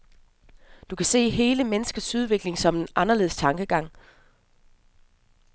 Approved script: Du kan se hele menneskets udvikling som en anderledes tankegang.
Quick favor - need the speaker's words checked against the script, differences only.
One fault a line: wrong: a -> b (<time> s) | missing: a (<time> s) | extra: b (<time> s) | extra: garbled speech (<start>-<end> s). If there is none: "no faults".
no faults